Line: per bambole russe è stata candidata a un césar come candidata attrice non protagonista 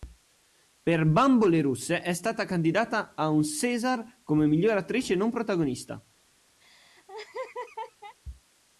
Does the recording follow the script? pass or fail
fail